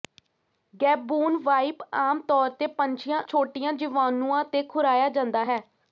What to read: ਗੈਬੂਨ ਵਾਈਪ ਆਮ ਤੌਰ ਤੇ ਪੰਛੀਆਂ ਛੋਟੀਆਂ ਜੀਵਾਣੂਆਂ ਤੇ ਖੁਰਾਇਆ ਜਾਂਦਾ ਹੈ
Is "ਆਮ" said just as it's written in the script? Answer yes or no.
yes